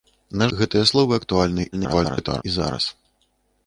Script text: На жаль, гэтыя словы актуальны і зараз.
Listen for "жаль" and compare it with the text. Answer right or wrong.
wrong